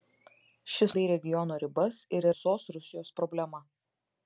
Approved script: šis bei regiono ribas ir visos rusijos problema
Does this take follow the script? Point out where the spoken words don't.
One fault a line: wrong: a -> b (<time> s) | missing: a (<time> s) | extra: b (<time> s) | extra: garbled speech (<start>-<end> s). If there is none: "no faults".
no faults